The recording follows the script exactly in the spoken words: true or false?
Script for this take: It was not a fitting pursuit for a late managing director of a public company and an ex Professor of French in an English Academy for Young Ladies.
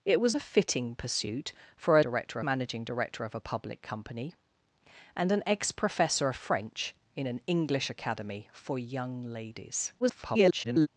false